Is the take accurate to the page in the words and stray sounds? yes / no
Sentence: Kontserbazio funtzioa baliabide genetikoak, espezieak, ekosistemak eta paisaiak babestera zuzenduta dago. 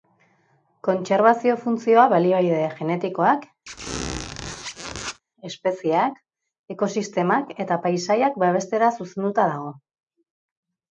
no